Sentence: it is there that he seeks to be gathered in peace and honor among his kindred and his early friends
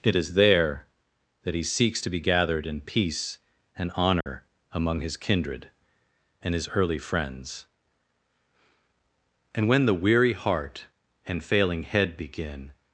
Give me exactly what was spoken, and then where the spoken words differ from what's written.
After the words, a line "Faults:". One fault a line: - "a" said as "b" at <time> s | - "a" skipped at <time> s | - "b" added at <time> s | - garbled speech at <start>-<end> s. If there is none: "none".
it is there that he seeks to be gathered in peace and honor among his kindred and his early friends and when the weary heart and failing head begin
Faults:
- "and when the weary heart and failing head begin" added at 9.5 s